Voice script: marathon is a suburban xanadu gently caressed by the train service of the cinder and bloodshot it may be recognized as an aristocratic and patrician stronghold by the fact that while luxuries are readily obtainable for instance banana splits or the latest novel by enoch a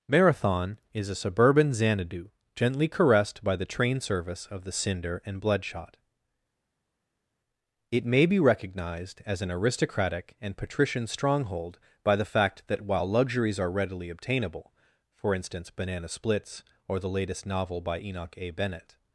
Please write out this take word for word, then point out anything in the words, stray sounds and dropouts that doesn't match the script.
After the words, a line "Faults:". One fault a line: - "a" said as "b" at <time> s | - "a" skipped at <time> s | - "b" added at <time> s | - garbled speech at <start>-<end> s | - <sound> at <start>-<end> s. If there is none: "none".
marathon is a suburban xanadu gently caressed by the train service of the cinder and bloodshot it may be recognized as an aristocratic and patrician stronghold by the fact that while luxuries are readily obtainable for instance banana splits or the latest novel by enoch a bennett
Faults:
- "bennett" added at 18.5 s